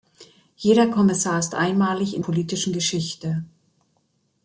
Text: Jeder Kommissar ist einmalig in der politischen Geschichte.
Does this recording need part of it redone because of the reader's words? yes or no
yes